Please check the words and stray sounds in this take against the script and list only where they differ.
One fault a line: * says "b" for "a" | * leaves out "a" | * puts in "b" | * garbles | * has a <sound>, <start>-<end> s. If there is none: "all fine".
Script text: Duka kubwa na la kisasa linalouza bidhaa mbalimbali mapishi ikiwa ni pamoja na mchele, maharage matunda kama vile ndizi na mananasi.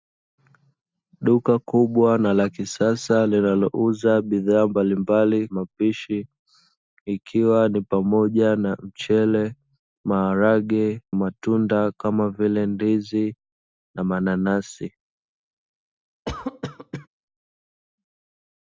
* has a cough, 16.3-17.1 s